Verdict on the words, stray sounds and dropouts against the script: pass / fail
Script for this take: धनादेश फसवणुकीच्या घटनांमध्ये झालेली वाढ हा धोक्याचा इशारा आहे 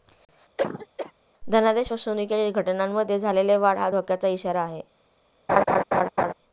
fail